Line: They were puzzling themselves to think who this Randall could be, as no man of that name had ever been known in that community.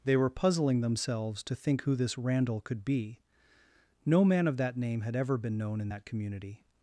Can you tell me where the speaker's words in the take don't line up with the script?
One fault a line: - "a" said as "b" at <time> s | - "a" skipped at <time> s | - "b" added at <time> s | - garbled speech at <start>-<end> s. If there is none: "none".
- "as" skipped at 3.2 s